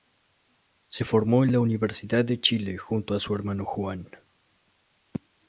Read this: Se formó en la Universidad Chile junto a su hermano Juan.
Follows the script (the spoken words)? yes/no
no